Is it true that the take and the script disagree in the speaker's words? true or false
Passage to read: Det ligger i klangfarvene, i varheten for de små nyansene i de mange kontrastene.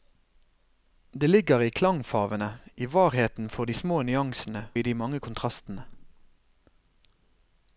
false